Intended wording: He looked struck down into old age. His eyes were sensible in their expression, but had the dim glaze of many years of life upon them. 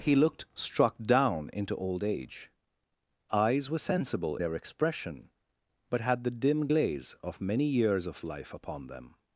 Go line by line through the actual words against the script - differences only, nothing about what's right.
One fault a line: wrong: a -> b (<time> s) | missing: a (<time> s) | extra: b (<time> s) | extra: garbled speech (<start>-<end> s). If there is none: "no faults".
missing: His (2.5 s)
missing: in (4.4 s)